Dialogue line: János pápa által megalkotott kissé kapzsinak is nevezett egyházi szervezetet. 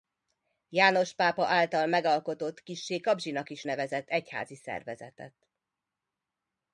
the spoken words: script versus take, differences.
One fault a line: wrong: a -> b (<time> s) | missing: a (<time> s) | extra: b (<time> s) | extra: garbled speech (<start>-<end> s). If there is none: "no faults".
no faults